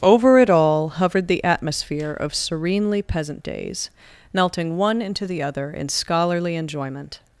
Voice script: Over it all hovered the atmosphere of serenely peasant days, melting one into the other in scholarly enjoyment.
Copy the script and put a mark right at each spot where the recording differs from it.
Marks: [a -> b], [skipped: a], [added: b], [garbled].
Over it all hovered the atmosphere of serenely peasant days, melting one into the other in scholarly enjoyment.